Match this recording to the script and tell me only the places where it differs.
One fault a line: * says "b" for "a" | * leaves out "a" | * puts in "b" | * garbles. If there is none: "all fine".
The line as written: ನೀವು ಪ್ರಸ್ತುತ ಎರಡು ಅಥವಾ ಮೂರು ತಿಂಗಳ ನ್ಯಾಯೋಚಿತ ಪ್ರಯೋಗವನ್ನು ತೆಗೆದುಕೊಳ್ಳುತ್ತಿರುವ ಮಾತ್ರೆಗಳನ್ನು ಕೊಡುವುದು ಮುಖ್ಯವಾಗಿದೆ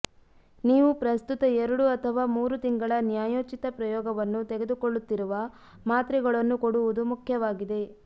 all fine